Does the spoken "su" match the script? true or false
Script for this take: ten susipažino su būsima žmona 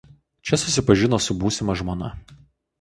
true